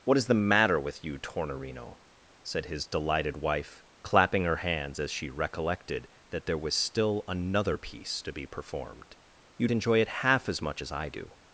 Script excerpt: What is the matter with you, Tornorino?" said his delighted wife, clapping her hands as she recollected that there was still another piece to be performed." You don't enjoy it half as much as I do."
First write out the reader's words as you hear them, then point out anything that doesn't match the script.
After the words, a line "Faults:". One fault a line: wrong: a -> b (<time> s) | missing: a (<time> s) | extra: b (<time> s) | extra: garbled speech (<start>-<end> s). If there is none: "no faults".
What is the matter with you, Tornorino?" said his delighted wife, clapping her hands as she recollected that there was still another piece to be performed." You enjoy it half as much as I do."
Faults:
missing: don't (9.7 s)